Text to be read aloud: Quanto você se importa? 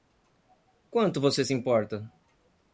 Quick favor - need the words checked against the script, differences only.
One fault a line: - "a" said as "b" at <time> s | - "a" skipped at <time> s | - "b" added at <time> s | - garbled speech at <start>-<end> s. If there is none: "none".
none